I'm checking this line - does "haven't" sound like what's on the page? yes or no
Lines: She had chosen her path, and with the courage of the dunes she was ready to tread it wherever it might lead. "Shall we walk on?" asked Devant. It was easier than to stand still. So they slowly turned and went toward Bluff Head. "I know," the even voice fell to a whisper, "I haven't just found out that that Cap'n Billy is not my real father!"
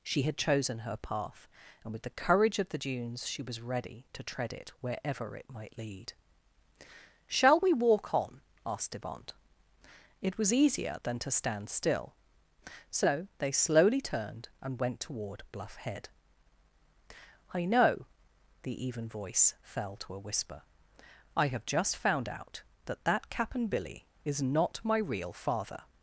no